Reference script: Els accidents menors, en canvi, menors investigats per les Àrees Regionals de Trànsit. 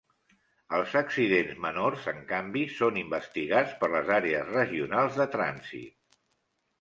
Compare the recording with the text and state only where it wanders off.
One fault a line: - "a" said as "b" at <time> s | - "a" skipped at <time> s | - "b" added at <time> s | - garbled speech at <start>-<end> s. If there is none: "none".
- "menors" said as "són" at 2.8 s